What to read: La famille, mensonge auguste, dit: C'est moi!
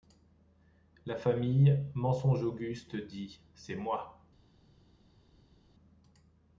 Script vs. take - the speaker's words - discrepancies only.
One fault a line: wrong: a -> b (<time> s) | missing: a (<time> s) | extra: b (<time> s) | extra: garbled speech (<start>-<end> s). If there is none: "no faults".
no faults